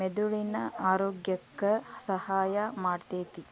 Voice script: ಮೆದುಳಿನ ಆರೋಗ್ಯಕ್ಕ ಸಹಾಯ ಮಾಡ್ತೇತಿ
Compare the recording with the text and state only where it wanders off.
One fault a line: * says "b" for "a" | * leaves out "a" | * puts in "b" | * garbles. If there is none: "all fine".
all fine